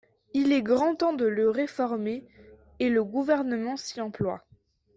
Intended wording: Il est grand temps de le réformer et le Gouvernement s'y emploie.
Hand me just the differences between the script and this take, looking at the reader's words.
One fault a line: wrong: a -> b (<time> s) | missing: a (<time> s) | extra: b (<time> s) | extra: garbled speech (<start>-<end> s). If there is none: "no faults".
no faults